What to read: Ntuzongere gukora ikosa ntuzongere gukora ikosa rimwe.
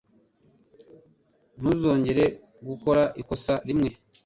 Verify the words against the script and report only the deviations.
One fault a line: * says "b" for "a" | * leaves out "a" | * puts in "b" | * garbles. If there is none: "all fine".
* leaves out "ntuzongere gukora ikosa"